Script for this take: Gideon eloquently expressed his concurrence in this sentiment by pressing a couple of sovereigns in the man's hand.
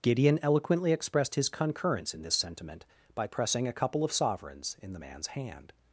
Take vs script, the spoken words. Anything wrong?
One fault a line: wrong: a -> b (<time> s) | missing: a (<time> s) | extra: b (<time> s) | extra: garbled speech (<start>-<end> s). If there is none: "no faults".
no faults